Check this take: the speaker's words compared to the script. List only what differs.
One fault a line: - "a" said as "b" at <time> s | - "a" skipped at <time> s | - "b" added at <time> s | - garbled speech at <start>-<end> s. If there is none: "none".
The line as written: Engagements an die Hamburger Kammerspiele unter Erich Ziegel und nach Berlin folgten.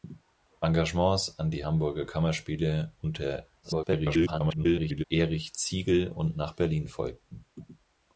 - garbled speech at 3.6-5.0 s